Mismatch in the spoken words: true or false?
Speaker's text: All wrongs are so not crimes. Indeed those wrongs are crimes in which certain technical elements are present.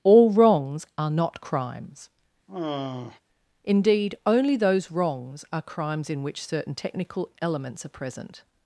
true